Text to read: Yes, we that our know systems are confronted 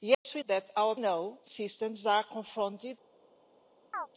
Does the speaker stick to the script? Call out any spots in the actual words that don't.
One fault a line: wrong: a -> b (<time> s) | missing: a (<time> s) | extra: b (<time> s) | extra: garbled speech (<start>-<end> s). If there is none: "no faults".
no faults